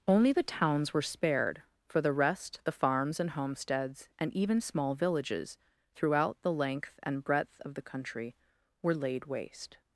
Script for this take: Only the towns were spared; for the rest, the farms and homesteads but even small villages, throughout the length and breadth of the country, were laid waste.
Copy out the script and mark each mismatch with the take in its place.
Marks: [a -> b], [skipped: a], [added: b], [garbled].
Only the towns were spared; for the rest, the farms and homesteads [but -> and] even small villages, throughout the length and breadth of the country, were laid waste.